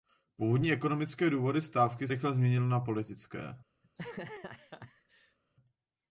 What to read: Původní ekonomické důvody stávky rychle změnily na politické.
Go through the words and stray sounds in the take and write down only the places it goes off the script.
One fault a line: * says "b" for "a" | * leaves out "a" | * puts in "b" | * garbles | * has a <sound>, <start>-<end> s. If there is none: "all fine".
* has a laugh, 3.8-5.4 s